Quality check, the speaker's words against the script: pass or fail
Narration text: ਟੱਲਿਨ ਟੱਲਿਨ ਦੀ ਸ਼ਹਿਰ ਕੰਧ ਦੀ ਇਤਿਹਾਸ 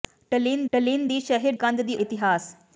pass